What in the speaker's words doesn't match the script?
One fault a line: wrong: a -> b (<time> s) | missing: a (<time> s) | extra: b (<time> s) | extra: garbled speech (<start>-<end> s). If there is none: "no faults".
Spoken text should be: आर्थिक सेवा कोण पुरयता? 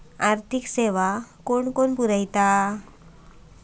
no faults